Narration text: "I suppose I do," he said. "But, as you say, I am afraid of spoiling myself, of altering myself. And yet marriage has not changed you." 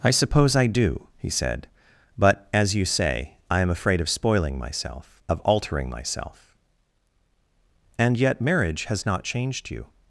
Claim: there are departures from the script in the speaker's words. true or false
false